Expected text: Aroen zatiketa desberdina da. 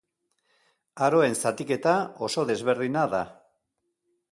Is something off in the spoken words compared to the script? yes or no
yes